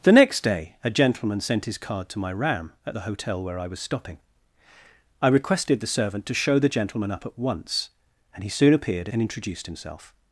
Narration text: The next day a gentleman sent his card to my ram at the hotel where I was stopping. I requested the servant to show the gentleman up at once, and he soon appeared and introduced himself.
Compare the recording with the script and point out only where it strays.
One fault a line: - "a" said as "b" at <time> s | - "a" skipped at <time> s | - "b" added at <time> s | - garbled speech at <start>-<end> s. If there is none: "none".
none